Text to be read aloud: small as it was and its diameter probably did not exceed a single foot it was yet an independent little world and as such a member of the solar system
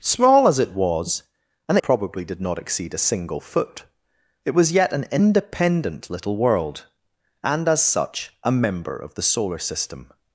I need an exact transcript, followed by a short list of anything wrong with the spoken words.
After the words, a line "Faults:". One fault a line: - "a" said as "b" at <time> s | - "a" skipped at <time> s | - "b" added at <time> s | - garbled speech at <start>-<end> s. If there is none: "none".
small as it was and probably did not exceed a single foot it was yet an independent little world and as such a member of the solar system
Faults:
- "its diameter" skipped at 1.8 s